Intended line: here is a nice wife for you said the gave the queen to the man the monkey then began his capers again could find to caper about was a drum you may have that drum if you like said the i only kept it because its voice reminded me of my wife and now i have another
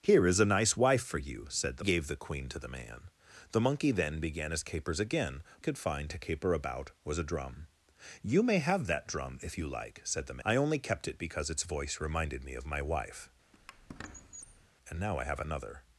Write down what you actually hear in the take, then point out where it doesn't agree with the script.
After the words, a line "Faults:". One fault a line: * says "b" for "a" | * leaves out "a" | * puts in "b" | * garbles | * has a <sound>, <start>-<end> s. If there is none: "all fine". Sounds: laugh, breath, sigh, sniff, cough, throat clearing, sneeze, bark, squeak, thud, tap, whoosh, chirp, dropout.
here is a nice wife for you said the gave the queen to the man the monkey then began his capers again could find to caper about was a drum you may have that drum if you like said the i only kept it because its voice reminded me of my wife and now i have another
Faults:
* has a squeak, 13.5-14.7 s